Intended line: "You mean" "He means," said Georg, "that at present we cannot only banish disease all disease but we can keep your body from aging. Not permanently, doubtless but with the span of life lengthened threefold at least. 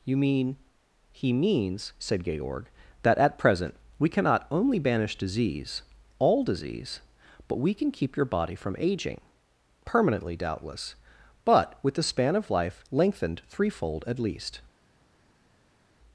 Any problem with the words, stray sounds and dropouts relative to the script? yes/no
yes